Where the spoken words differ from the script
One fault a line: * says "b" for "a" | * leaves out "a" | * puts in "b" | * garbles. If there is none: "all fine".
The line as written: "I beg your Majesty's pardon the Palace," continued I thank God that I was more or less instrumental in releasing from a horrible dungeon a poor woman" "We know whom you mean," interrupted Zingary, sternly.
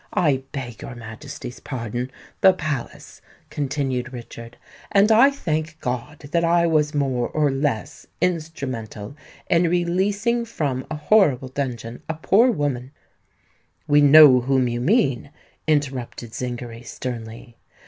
* puts in "Richard and"